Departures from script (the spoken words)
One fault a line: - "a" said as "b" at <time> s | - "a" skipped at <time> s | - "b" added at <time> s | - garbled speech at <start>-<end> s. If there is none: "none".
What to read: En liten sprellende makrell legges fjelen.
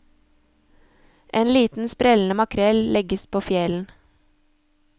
- "på" added at 3.3 s